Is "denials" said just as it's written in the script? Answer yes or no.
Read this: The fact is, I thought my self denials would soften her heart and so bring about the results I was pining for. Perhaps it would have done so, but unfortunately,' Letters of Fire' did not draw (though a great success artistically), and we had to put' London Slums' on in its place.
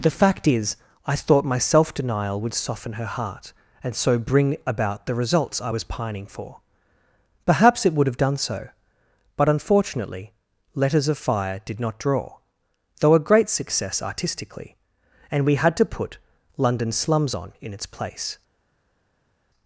no